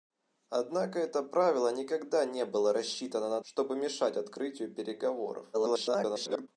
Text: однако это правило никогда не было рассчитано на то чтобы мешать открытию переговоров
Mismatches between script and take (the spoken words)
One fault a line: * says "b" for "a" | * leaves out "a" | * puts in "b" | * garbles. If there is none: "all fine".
* leaves out "то"
* garbles